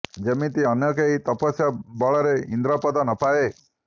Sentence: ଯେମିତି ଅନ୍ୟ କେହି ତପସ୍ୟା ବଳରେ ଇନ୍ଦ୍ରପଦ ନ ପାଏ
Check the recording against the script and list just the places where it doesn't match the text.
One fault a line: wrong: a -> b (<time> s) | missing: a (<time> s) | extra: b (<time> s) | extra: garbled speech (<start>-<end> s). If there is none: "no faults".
no faults